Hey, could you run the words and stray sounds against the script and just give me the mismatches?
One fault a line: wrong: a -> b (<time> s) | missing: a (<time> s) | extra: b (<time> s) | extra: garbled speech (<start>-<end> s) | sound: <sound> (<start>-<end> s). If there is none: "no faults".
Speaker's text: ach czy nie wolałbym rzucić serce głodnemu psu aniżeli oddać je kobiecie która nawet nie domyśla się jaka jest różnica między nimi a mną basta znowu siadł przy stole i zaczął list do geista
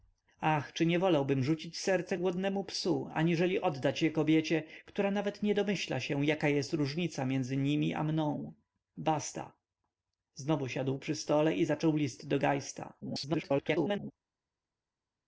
extra: garbled speech (13.0-14.1 s)